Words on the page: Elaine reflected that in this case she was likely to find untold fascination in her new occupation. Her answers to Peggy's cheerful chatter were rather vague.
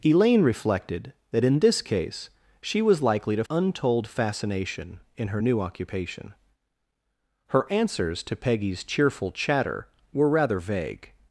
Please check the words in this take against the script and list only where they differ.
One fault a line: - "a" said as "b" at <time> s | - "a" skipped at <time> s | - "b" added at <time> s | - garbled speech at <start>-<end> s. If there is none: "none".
- "find" skipped at 3.4 s